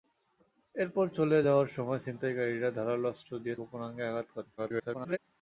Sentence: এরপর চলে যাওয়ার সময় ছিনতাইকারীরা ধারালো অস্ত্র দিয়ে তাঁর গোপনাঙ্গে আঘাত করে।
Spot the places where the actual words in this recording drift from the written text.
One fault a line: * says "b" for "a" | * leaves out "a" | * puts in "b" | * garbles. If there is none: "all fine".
* leaves out "তাঁর"
* garbles